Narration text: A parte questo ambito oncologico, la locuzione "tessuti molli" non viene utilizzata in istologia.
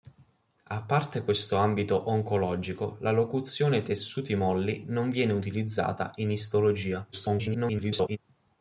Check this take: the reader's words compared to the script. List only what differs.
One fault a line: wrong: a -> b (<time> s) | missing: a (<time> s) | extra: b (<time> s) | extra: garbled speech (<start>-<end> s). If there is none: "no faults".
extra: garbled speech (7.1-8.2 s)